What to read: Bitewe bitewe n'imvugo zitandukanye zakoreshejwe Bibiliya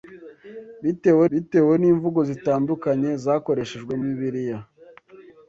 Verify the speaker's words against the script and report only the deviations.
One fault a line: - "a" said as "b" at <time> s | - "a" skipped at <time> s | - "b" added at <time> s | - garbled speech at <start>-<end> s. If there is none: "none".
none